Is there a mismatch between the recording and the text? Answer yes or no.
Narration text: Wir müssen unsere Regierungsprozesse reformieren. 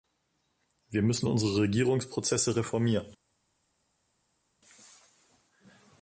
no